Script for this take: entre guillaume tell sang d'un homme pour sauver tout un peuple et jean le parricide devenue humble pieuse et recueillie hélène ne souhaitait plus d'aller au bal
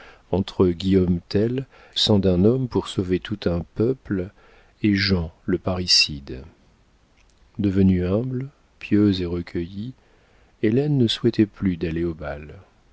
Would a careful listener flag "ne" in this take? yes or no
no